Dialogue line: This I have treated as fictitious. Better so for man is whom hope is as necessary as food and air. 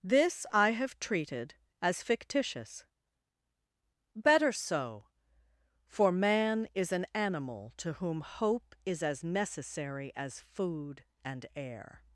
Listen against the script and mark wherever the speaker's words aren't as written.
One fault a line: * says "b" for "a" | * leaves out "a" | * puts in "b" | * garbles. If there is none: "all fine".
* puts in "an animal to"